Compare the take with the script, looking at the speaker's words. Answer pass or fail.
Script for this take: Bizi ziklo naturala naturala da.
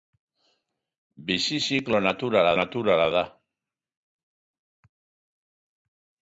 pass